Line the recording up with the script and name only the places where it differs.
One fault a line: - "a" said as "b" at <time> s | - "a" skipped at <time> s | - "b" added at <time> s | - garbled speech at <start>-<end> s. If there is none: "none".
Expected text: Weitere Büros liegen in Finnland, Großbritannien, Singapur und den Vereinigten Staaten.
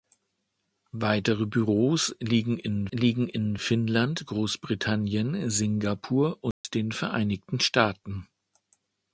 - "liegen in" added at 2.9 s